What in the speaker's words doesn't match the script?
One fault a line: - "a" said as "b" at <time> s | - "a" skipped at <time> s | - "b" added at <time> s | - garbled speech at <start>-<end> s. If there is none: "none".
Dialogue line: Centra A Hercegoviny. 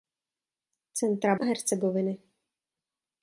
none